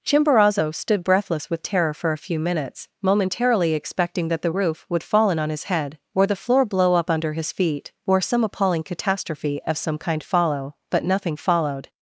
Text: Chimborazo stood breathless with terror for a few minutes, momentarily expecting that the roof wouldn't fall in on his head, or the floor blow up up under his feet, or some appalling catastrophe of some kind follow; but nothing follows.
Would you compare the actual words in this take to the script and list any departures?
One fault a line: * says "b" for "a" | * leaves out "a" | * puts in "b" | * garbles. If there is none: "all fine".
* says "would" for "wouldn't"
* leaves out "up"
* says "followed" for "follows"